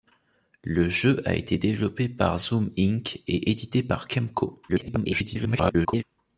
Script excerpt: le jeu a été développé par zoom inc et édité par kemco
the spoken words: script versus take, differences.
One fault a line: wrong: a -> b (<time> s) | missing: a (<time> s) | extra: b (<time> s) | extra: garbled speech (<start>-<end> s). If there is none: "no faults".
extra: garbled speech (4.7-6.0 s)